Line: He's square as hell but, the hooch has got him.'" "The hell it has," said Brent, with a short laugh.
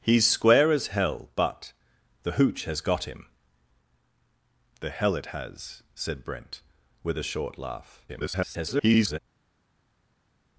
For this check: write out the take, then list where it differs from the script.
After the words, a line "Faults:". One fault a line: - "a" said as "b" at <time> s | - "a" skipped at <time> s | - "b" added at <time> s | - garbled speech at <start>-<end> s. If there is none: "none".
He's square as hell but, the hooch has got him.'" "The hell it has," said Brent, with a short laugh. [garbled]
Faults:
- garbled speech at 8.1-9.2 s